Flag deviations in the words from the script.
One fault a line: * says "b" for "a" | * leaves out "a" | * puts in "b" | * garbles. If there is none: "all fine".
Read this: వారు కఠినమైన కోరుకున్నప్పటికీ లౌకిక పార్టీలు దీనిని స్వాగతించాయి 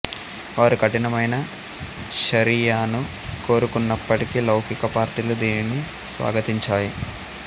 * puts in "షరియాను"